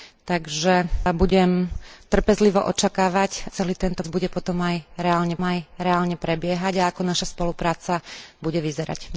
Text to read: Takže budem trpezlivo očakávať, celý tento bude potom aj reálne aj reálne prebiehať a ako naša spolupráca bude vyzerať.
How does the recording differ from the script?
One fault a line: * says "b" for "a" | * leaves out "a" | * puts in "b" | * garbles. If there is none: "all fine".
all fine